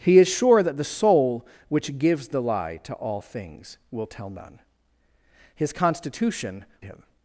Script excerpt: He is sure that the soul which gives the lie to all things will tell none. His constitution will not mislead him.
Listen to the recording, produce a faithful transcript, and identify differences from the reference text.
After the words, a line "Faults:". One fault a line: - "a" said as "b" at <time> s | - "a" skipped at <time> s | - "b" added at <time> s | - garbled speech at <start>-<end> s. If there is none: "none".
He is sure that the soul which gives the lie to all things will tell none. His constitution him.
Faults:
- "will not mislead" skipped at 6.7 s